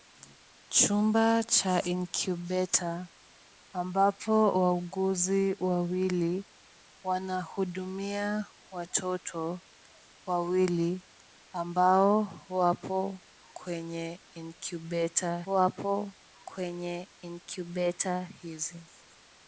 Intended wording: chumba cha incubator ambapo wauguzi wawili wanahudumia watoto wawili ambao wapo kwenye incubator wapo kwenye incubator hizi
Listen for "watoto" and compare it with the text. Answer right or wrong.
right